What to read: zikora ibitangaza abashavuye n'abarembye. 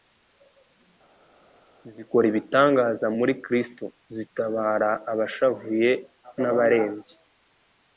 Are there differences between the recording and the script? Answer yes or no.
yes